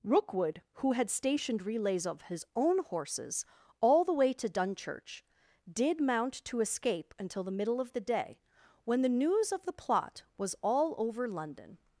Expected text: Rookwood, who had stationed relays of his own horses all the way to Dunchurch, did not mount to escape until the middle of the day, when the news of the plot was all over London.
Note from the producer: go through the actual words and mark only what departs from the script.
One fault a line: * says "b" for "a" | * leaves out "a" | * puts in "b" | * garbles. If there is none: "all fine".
* leaves out "not"